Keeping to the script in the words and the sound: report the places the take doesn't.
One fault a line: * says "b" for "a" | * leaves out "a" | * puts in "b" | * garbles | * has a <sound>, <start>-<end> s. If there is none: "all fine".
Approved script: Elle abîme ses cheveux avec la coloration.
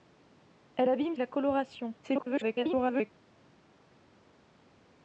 * leaves out "ses cheveux avec"
* garbles